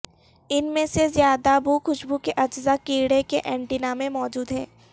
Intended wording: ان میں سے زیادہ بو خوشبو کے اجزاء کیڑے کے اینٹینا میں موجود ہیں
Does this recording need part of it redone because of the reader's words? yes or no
no